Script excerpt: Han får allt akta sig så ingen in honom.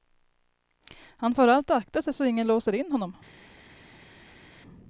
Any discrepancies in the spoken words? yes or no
yes